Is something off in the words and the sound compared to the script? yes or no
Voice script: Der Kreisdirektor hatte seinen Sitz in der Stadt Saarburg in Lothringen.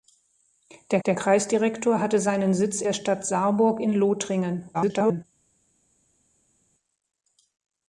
yes